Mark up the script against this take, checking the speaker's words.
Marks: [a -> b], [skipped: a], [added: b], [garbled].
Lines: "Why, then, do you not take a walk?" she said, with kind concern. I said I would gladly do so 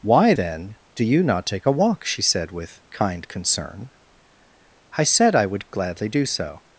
"Why, then, do you not take a walk?" she said, with kind concern. I said I would gladly do so